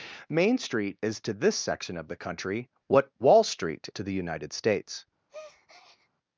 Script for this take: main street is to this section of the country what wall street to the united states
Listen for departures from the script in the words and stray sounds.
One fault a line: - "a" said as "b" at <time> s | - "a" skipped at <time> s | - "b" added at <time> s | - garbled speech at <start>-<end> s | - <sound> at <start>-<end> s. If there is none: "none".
- breath at 5.3-6.1 s